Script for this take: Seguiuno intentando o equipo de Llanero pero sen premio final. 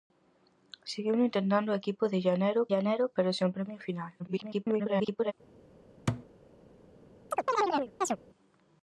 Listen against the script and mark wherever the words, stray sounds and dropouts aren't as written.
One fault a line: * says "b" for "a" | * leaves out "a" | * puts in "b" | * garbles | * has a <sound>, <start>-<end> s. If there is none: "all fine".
* puts in "Llanero"
* garbles
* has a thud, 6.1-6.3 s
* has a chirp, 7.3-8.2 s